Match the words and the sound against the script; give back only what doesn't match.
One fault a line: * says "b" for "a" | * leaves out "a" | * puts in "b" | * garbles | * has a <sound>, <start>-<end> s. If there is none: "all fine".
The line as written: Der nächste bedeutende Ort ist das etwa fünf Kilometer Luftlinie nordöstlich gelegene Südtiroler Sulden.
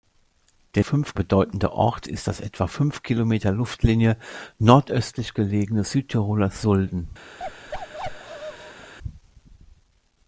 * says "fünf" for "nächste"
* has a bark, 7.4-8.9 s